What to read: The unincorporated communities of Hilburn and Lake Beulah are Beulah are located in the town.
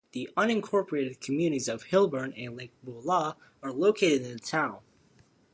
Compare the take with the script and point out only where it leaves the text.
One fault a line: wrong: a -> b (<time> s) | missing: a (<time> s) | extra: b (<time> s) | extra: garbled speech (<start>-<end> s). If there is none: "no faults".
missing: Beulah are (3.7 s)